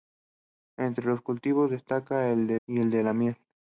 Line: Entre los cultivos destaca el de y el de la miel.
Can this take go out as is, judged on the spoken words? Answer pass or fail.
pass